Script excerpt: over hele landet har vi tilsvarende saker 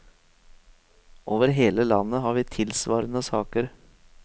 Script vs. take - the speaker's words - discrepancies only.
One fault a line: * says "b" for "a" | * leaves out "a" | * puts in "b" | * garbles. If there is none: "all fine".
all fine